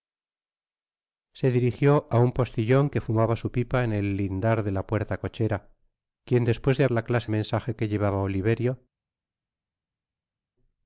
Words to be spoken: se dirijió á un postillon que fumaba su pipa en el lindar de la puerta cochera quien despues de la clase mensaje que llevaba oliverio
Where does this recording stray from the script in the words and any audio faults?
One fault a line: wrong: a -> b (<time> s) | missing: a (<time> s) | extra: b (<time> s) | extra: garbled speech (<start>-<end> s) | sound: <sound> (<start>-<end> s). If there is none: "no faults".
no faults